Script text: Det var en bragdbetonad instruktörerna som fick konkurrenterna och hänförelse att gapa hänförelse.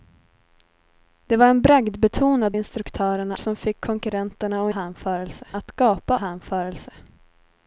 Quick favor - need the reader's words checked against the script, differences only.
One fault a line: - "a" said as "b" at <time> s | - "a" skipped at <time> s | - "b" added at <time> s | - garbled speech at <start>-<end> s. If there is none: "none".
none